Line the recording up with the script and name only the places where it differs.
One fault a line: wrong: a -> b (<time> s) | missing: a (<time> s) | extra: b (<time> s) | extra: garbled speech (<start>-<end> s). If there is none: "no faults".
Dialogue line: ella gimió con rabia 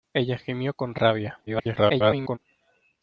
extra: garbled speech (1.5-2.4 s)